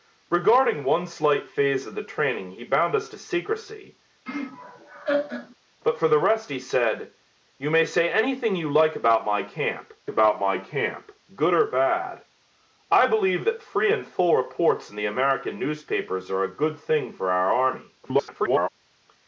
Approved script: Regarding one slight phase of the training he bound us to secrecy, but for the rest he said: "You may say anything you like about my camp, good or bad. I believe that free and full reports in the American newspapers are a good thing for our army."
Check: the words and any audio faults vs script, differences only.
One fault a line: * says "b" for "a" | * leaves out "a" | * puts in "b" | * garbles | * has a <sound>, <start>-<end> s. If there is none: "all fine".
* has a laugh, 4.3-5.6 s
* puts in "about my camp"
* garbles